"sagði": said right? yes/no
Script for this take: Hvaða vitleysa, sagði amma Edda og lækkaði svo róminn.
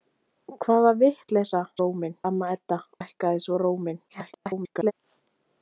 no